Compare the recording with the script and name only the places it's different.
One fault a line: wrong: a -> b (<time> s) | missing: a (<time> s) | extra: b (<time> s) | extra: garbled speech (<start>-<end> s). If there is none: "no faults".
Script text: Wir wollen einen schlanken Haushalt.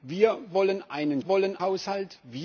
wrong: schlanken -> wollen (1.2 s)